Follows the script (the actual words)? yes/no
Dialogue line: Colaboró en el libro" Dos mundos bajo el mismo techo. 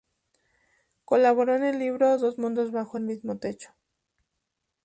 yes